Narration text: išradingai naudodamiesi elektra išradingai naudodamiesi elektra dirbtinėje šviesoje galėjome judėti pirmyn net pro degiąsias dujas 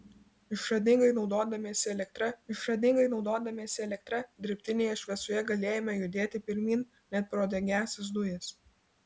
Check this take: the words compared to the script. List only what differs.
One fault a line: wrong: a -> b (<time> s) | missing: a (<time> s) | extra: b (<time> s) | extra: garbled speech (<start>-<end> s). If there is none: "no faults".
no faults